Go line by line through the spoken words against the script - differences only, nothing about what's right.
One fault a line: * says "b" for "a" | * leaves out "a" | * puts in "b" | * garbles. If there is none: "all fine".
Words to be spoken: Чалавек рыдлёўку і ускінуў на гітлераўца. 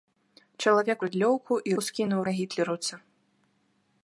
all fine